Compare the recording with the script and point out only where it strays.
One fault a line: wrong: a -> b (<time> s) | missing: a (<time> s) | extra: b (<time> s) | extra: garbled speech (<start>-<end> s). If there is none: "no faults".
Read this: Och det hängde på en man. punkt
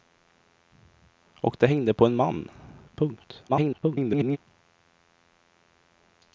extra: garbled speech (3.5-4.4 s)